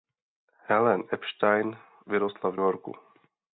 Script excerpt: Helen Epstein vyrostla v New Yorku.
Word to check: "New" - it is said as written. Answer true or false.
false